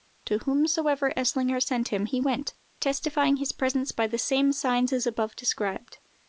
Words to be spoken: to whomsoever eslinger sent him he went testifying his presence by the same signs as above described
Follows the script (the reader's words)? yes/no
yes